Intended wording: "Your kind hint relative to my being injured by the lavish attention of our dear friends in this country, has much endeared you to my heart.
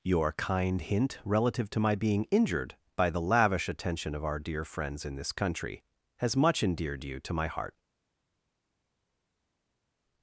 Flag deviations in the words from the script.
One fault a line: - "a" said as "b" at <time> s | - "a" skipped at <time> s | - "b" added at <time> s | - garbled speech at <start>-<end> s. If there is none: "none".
none